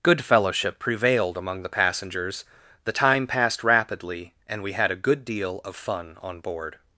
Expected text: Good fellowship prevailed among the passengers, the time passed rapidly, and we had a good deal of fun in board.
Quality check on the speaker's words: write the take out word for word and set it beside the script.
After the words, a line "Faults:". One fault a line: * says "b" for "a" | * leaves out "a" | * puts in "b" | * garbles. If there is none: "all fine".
Good fellowship prevailed among the passengers, the time passed rapidly, and we had a good deal of fun on board.
Faults:
* says "on" for "in"